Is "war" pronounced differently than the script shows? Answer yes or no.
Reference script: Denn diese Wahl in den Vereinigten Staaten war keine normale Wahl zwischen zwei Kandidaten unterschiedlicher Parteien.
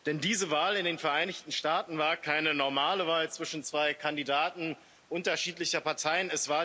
no